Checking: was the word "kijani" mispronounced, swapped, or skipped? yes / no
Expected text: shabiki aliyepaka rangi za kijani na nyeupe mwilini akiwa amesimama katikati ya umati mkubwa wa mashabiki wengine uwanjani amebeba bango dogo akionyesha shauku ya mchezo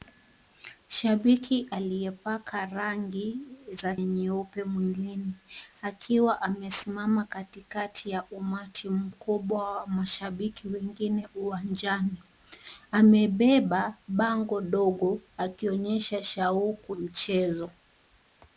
yes